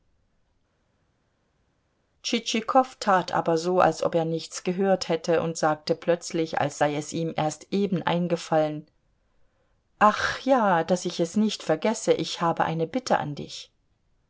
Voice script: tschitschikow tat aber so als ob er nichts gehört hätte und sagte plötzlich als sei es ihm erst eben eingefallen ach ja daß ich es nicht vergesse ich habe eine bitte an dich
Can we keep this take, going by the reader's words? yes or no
yes